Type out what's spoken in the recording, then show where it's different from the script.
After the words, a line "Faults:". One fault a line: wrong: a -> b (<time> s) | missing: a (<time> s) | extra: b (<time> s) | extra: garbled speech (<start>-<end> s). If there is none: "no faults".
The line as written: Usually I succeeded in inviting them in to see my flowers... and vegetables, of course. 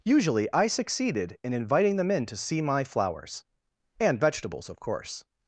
Usually I succeeded in inviting them in to see my flowers... and vegetables, of course.
Faults:
no faults